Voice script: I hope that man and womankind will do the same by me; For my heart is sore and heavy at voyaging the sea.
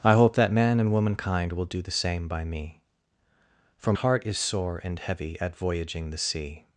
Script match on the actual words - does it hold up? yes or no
no